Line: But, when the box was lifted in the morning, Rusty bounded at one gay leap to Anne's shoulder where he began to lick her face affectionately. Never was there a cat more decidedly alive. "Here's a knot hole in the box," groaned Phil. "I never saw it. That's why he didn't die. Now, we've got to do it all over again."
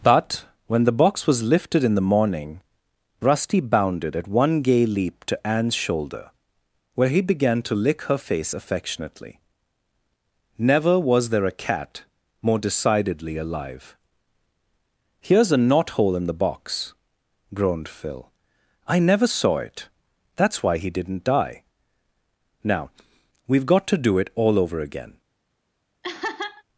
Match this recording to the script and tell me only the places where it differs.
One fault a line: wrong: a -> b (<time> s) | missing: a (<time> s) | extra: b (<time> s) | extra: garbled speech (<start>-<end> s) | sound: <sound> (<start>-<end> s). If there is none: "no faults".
sound: laugh (26.0-26.6 s)